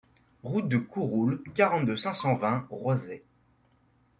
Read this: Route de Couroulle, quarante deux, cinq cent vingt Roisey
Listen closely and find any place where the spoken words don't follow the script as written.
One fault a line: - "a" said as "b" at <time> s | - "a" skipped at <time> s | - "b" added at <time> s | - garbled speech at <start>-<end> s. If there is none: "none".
none